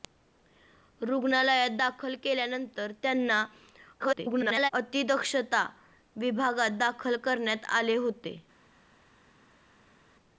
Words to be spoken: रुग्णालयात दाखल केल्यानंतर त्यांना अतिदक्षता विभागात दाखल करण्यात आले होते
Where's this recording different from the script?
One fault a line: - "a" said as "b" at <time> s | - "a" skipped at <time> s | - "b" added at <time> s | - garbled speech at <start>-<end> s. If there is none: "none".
- garbled speech at 4.0-4.7 s